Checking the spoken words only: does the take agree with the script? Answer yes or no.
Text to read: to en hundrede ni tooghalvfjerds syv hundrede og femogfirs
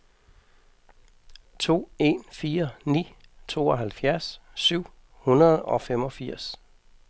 no